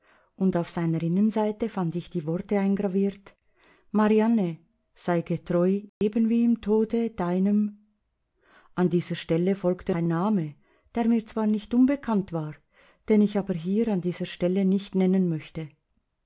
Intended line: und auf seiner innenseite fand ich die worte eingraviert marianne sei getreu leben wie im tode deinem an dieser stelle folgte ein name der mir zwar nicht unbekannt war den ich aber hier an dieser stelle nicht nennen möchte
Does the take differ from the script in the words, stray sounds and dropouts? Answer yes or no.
yes